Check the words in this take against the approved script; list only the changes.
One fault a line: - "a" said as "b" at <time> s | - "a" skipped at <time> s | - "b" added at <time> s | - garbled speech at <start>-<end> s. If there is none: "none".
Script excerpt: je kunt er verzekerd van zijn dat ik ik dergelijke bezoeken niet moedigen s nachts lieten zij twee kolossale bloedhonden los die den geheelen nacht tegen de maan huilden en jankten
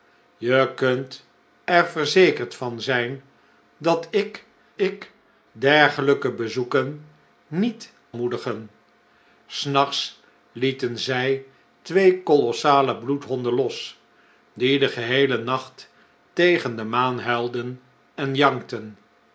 none